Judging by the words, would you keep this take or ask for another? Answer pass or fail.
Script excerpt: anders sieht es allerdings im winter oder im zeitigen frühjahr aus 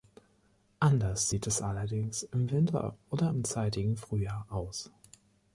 pass